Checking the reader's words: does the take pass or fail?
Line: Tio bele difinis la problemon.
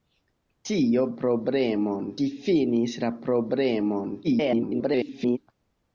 fail